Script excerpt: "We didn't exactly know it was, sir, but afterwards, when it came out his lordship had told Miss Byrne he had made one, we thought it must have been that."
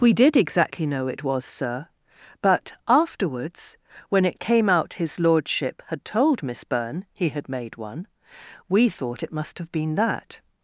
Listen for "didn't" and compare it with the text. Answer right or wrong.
wrong